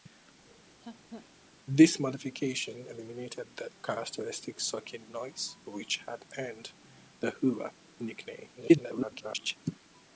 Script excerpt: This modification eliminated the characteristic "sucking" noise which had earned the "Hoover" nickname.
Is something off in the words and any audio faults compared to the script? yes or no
yes